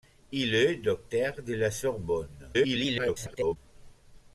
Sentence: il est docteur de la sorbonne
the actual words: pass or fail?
fail